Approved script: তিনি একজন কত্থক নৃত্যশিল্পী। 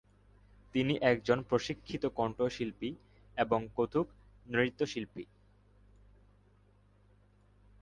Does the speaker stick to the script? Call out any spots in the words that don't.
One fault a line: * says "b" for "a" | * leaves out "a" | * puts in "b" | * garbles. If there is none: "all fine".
* puts in "প্রশিক্ষিত কণ্ঠশিল্পী এবং"